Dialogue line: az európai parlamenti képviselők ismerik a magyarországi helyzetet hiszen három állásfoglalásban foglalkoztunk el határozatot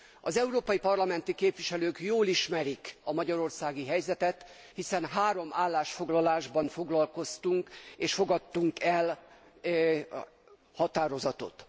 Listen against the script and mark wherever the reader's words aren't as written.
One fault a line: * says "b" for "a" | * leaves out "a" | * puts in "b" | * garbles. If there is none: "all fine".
* puts in "jól"
* puts in "és fogadtunk"